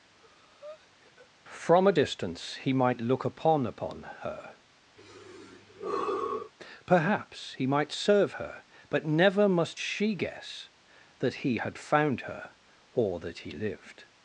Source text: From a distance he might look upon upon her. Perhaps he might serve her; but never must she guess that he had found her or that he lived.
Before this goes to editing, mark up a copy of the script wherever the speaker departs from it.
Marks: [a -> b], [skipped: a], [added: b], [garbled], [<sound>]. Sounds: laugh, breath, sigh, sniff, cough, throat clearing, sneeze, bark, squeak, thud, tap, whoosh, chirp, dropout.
[breath] From a distance he might look upon upon her. [sigh] Perhaps he might serve her; but never must she guess that he had found her or that he lived.